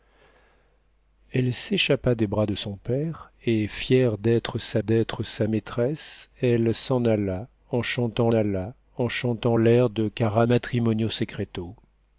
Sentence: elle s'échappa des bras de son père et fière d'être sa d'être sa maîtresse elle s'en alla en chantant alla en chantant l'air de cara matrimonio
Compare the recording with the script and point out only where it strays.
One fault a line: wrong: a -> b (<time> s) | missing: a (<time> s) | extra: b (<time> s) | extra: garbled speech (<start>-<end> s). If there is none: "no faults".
no faults